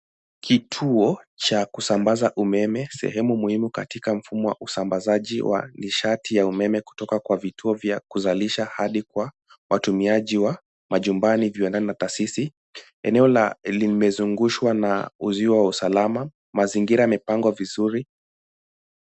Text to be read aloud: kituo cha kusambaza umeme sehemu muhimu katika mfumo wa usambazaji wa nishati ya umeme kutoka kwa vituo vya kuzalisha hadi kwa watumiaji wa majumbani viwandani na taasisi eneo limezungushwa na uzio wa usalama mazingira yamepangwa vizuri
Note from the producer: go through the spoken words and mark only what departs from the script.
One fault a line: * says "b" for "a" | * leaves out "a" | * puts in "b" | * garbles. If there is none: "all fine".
all fine